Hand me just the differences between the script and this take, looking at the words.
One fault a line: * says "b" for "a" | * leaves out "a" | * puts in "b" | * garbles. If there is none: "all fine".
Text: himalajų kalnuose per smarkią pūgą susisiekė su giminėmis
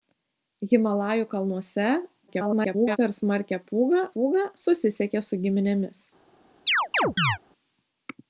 * garbles
* puts in "pūgą"